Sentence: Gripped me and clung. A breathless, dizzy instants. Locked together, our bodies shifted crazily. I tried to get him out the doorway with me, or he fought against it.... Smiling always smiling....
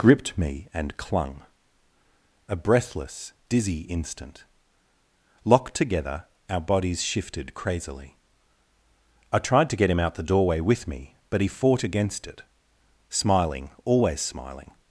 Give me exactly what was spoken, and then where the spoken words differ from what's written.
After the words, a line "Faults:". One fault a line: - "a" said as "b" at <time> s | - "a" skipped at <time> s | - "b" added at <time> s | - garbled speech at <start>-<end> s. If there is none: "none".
Gripped me and clung. A breathless, dizzy instant. Locked together, our bodies shifted crazily. I tried to get him out the doorway with me, but he fought against it.... Smiling always smiling....
Faults:
- "instants" said as "instant" at 3.8 s
- "or" said as "but" at 11.3 s